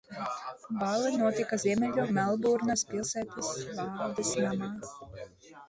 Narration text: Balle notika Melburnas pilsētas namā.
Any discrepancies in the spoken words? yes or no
yes